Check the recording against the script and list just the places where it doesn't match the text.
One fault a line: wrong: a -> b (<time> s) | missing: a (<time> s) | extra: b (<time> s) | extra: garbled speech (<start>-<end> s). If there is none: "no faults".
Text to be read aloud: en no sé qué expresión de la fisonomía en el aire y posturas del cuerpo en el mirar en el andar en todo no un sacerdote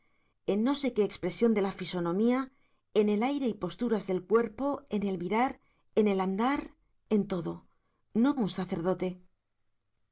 no faults